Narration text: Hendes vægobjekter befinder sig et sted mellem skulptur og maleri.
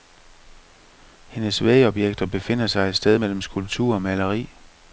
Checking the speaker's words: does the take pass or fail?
pass